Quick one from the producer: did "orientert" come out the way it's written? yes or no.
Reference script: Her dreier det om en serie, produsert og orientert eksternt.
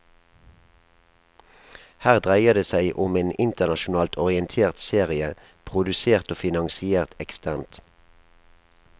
no